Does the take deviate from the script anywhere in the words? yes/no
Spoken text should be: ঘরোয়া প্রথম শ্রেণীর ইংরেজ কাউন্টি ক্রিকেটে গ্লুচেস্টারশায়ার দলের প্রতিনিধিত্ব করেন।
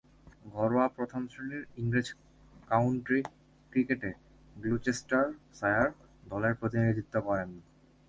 no